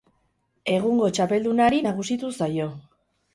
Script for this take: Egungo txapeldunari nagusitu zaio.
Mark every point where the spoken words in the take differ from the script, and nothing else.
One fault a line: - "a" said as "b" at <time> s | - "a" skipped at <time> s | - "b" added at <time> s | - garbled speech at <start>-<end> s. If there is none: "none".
none